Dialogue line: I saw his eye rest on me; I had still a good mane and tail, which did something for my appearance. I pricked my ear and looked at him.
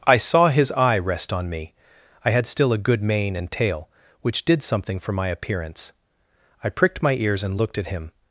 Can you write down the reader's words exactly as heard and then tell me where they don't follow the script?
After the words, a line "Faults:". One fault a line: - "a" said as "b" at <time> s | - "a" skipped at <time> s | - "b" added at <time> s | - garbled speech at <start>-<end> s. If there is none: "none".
I saw his eye rest on me; I had still a good mane and tail, which did something for my appearance. I pricked my ears and looked at him.
Faults:
- "ear" said as "ears" at 7.1 s